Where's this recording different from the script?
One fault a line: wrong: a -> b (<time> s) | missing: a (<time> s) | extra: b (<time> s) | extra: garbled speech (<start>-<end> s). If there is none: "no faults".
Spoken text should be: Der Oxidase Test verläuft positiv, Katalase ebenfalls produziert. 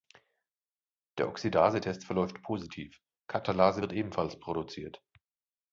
extra: wird (3.8 s)